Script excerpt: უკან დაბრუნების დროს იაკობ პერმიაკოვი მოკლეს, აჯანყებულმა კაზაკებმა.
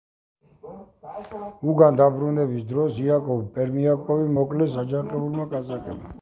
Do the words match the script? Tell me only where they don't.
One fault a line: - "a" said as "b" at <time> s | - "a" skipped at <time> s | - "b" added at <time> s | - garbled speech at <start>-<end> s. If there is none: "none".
none